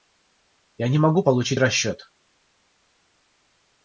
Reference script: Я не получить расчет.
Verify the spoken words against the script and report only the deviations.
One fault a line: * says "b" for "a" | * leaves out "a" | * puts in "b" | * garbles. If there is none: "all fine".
* puts in "могу"